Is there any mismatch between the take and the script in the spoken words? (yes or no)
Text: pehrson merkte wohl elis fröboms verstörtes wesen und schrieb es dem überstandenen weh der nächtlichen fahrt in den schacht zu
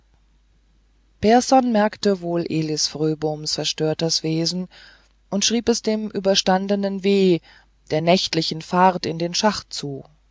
no